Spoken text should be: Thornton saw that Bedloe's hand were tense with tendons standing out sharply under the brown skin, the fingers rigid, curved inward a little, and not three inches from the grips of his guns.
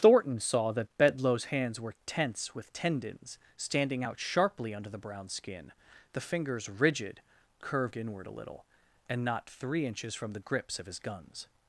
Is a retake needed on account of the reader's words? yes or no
yes